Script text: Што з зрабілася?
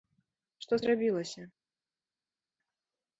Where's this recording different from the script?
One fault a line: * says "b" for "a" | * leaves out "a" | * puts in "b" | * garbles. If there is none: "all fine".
all fine